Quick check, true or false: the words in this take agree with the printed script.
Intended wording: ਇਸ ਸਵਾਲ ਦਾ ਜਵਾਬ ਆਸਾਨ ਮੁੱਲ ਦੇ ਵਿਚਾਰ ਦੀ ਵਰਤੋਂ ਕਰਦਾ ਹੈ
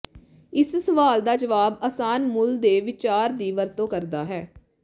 true